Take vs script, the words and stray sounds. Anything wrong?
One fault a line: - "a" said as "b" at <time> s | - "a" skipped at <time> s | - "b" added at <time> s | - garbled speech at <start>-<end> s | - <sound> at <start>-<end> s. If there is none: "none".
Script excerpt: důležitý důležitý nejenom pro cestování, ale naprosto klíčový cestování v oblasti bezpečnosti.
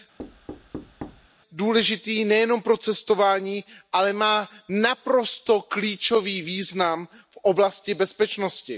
- thud at 0.2-1.3 s
- "důležitý" skipped at 2.2 s
- "má" added at 4.1 s
- "cestování" said as "význam" at 6.4 s